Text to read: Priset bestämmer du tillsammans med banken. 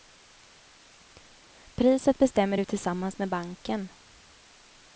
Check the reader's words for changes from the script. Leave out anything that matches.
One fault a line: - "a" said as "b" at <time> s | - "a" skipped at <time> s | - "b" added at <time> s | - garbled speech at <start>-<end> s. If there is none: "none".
none